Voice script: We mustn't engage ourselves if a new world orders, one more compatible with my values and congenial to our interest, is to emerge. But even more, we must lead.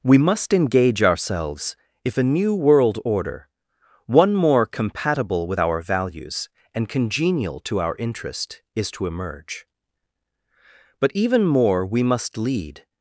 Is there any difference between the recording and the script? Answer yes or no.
yes